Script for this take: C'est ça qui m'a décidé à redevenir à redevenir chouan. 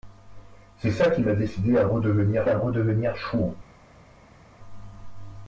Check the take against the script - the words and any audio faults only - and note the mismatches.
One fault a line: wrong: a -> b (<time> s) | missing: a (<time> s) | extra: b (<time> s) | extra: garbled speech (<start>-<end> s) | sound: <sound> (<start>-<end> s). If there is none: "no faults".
no faults